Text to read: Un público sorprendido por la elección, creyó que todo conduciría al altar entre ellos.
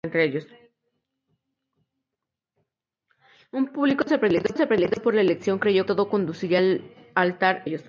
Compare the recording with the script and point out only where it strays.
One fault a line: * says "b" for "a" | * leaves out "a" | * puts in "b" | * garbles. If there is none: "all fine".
* puts in "sorprendido"
* leaves out "que"
* leaves out "entre"